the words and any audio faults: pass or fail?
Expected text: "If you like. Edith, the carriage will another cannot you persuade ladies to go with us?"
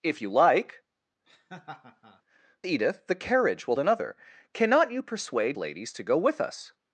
fail